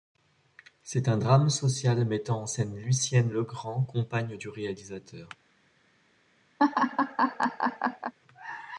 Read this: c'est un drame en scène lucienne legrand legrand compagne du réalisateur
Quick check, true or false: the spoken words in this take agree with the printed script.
false